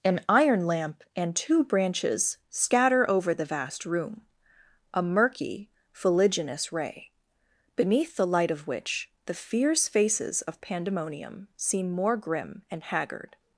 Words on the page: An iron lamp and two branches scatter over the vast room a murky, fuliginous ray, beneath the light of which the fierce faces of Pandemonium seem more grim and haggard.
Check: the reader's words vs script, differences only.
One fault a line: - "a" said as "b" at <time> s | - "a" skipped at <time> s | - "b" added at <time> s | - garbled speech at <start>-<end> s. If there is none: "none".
none